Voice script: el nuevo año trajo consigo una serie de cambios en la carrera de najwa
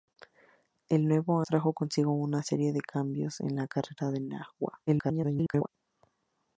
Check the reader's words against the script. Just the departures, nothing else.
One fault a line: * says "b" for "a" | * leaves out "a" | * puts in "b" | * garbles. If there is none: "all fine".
* leaves out "año"
* garbles